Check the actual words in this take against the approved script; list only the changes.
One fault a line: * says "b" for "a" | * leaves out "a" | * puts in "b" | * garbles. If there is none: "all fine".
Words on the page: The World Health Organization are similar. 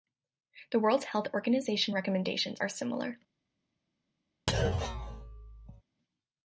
* puts in "recommendations"